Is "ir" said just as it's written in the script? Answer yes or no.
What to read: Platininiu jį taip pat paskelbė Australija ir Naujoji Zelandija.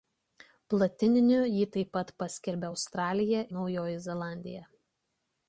no